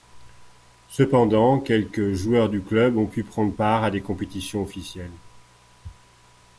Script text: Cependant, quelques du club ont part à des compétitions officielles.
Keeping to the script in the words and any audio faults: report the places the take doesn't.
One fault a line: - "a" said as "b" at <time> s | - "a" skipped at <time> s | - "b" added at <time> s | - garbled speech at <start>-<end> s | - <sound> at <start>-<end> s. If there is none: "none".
- "joueurs" added at 2.1 s
- "pu prendre" added at 3.0 s